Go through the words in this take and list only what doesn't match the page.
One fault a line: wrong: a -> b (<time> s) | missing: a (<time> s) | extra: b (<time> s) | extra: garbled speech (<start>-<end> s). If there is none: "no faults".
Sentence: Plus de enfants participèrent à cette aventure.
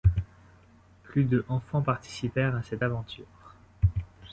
no faults